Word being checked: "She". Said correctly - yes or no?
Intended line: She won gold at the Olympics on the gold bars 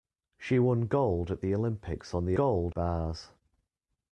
yes